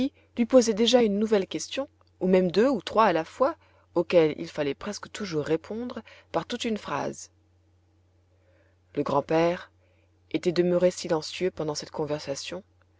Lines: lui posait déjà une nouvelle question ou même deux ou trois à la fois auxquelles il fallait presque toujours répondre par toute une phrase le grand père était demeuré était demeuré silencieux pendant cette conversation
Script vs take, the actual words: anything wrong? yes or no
yes